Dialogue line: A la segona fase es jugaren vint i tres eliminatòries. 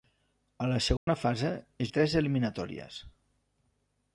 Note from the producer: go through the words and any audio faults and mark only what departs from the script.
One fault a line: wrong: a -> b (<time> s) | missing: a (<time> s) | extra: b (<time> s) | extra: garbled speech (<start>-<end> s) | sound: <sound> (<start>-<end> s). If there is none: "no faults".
sound: dropout (1.0-1.1 s)
missing: jugaren vint (1.9 s)